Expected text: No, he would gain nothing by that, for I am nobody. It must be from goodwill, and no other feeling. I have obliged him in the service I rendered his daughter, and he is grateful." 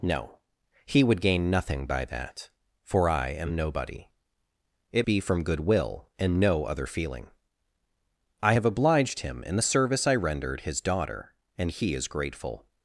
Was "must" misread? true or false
true